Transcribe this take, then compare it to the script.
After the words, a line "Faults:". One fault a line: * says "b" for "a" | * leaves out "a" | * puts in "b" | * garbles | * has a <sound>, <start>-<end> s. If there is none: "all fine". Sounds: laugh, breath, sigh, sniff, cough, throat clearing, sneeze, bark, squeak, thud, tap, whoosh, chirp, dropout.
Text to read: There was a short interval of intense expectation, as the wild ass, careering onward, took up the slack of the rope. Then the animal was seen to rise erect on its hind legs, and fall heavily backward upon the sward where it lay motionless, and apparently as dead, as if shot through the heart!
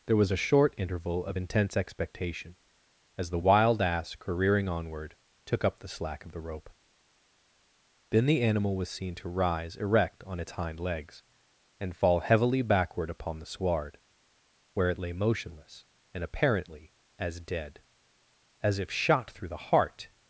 There was a short interval of intense expectation, as the wild ass, careering onward, took up the slack of the rope. Then the animal was seen to rise erect on its hind legs, and fall heavily backward upon the sward where it lay motionless, and apparently as dead, as if shot through the heart!
Faults:
all fine